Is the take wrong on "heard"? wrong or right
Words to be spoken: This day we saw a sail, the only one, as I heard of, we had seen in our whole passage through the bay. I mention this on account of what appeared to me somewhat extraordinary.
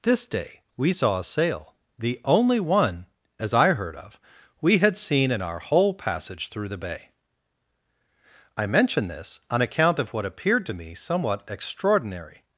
right